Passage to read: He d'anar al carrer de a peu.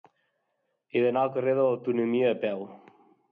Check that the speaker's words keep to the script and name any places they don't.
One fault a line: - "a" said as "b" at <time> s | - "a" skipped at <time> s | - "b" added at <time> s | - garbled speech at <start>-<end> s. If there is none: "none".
- "l'Autonomia" added at 1.7 s